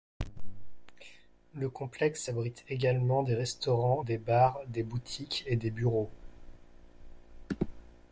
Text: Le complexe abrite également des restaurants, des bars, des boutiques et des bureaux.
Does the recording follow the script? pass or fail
pass